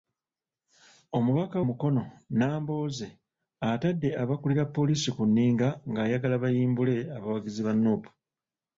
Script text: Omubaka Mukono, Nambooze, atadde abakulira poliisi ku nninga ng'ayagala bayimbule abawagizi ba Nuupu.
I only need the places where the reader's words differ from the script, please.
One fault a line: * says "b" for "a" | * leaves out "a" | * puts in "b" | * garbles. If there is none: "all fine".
all fine